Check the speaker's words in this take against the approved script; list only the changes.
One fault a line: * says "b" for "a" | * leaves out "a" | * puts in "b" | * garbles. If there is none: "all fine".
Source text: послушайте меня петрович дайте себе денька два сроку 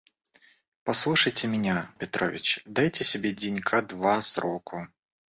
all fine